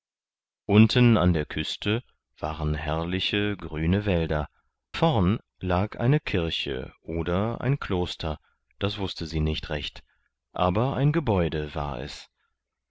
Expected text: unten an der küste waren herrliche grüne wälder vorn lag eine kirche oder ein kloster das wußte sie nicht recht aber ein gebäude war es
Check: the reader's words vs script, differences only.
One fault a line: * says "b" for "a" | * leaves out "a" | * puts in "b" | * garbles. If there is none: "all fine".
all fine